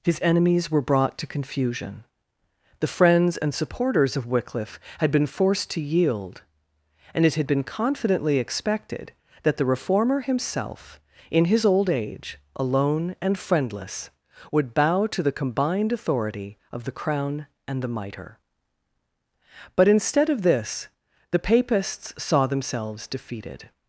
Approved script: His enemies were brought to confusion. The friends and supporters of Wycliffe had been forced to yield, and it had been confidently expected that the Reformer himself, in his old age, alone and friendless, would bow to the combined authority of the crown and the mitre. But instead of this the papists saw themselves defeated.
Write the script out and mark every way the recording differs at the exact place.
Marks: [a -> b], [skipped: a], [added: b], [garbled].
His enemies were brought to confusion. The friends and supporters of Wycliffe had been forced to yield, and it had been confidently expected that the Reformer himself, in his old age, alone and friendless, would bow to the combined authority of the crown and the mitre. But instead of this the papists saw themselves defeated.